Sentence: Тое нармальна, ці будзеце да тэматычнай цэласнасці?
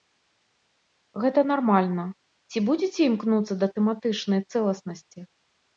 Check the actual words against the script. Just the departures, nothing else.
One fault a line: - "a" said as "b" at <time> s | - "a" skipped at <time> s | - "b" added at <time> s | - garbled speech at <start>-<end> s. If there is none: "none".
- "Тое" said as "Гэта" at 1.2 s
- "імкнуцца" added at 3.1 s